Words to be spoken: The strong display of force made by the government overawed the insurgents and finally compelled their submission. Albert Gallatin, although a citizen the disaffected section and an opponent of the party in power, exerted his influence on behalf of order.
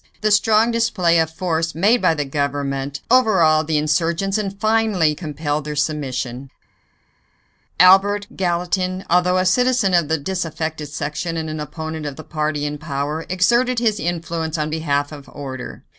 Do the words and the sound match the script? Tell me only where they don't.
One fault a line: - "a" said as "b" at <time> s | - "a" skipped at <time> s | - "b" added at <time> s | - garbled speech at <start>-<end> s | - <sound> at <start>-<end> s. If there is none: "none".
- "of" added at 9.9 s